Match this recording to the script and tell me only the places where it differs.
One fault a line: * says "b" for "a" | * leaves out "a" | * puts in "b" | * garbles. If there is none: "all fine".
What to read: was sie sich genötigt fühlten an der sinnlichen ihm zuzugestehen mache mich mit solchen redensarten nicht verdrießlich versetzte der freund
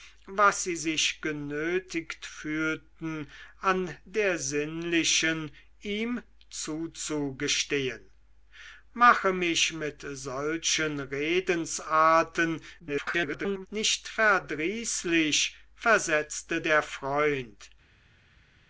* garbles